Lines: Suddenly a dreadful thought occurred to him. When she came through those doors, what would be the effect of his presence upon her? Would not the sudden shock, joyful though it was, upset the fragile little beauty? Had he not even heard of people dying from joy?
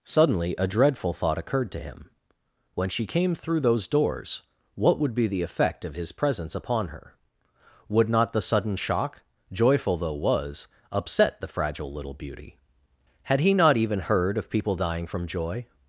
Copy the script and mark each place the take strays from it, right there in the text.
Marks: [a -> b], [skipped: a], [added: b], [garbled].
Suddenly a dreadful thought occurred to him. When she came through those doors, what would be the effect of his presence upon her? Would not the sudden shock, joyful though [skipped: it] was, upset the fragile little beauty? Had he not even heard of people dying from joy?